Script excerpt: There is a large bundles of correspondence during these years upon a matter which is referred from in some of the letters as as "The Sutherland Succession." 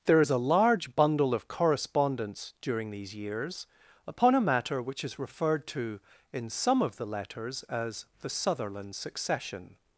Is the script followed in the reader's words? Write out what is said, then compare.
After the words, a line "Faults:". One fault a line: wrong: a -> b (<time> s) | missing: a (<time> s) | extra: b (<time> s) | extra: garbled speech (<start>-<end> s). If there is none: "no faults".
There is a large bundle of correspondence during these years upon a matter which is referred to in some of the letters as "The Sutherland Succession."
Faults:
wrong: bundles -> bundle (0.9 s)
wrong: from -> to (5.7 s)
missing: as (8.0 s)